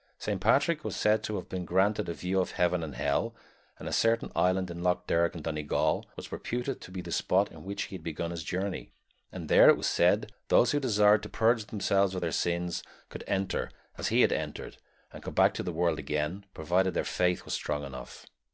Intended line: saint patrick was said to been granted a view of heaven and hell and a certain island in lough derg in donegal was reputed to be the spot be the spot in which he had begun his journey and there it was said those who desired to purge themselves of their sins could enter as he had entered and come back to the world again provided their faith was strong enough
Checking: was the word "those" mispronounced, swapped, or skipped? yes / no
no